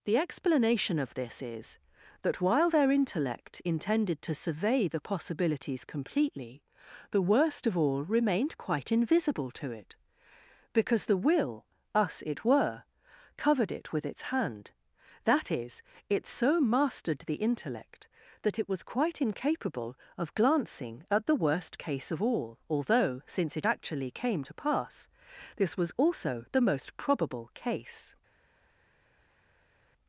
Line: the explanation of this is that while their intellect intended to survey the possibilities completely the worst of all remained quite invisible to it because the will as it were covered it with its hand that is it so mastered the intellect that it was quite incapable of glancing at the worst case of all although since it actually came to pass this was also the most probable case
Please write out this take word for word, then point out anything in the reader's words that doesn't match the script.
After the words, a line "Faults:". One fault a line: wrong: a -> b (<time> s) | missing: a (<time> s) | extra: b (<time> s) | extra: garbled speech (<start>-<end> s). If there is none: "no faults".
the explanation of this is that while their intellect intended to survey the possibilities completely the worst of all remained quite invisible to it because the will us it were covered it with its hand that is it so mastered the intellect that it was quite incapable of glancing at the worst case of all although since it actually came to pass this was also the most probable case
Faults:
wrong: as -> us (11.9 s)